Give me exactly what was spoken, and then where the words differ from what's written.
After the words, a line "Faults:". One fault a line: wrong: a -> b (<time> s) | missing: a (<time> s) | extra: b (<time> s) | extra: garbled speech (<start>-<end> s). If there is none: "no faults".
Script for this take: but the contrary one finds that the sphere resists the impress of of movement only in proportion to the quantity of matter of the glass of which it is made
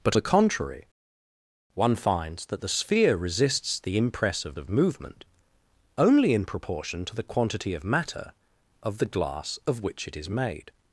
but the contrary one finds that the sphere resists the impress of of movement only in proportion to the quantity of matter of the glass of which it is made
Faults:
no faults